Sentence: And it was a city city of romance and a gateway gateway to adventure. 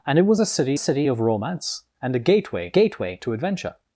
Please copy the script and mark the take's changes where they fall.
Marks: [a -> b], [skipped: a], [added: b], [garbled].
And it was a city city of romance and a gateway gateway to adventure.